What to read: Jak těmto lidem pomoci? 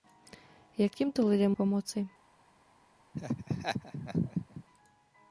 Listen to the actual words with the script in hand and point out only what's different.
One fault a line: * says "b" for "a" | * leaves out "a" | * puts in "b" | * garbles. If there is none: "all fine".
all fine